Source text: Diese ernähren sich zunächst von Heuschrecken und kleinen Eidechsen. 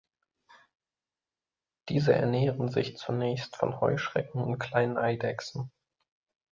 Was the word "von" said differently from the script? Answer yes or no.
no